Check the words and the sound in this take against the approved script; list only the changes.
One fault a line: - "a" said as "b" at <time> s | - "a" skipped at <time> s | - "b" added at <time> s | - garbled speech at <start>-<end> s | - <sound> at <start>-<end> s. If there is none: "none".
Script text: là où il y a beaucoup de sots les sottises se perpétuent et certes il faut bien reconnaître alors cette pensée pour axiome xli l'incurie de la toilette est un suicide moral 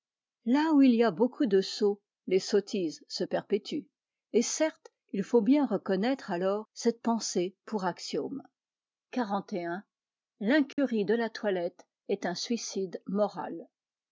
- dropout at 10.7-10.8 s